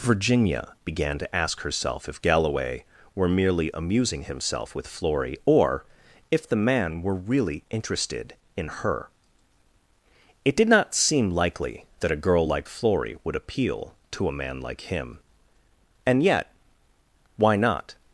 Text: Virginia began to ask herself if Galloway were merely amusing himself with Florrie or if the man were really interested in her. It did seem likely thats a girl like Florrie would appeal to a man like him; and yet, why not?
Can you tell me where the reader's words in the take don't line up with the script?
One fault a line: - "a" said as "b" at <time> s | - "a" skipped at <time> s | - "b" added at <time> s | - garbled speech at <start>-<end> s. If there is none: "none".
- "not" added at 10.7 s
- "thats" said as "that" at 12.0 s